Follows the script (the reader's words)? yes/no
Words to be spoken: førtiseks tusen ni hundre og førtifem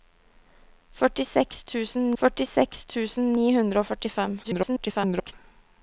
no